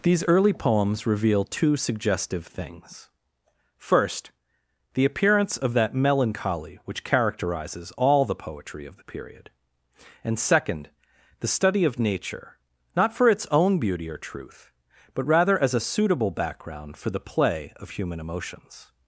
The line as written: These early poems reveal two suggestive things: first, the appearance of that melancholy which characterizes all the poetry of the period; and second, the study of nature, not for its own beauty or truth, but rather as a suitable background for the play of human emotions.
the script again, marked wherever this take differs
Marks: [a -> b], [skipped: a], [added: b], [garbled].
These early poems reveal two suggestive things: first, the appearance of that melancholy which characterizes all the poetry of the period; and second, the study of nature, not for its own beauty or truth, but rather as a suitable background for the play of human emotions.